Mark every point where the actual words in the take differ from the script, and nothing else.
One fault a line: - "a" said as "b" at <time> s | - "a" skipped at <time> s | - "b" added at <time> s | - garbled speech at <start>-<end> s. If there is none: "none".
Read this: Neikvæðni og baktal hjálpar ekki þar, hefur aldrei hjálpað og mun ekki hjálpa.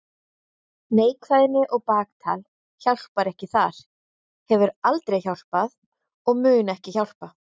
none